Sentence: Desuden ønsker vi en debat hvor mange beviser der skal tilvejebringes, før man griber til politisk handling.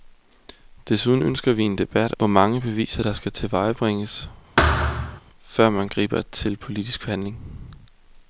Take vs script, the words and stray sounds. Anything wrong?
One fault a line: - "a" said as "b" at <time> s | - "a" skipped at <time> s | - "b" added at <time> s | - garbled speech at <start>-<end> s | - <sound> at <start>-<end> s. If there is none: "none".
- thud at 4.6-5.2 s